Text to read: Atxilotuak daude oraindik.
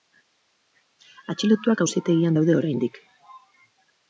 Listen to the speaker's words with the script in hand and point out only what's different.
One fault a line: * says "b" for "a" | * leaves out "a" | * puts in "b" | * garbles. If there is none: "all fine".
* puts in "auzitegian"